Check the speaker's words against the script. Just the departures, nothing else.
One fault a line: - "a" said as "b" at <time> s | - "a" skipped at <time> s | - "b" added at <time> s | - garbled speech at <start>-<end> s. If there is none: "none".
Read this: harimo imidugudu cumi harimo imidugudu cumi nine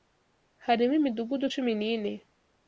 - "harimo imidugudu cumi" skipped at 1.7 s